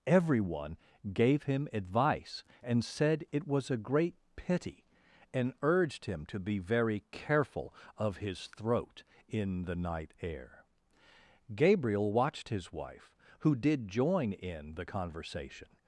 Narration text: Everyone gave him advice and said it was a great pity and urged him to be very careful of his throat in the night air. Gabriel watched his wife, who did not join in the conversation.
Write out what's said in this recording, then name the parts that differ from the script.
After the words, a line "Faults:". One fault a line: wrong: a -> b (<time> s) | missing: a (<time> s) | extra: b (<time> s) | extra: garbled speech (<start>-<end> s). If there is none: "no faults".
Everyone gave him advice and said it was a great pity and urged him to be very careful of his throat in the night air. Gabriel watched his wife, who did join in the conversation.
Faults:
missing: not (13.9 s)